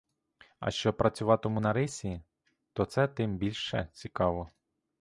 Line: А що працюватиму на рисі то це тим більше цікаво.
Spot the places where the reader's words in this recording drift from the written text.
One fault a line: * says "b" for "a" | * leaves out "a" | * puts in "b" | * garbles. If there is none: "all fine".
all fine